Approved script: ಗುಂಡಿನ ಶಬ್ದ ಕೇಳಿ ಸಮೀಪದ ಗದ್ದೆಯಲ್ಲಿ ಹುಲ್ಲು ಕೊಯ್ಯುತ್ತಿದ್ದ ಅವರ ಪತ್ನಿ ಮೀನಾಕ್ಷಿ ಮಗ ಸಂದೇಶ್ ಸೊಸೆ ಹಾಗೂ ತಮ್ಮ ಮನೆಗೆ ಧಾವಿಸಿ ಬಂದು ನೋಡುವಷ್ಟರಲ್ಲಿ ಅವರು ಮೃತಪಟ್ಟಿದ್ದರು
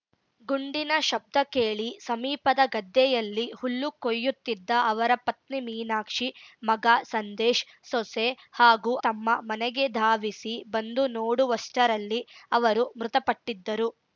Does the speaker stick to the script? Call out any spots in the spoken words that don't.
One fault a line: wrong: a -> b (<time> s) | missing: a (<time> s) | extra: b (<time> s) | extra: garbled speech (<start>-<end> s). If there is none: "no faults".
no faults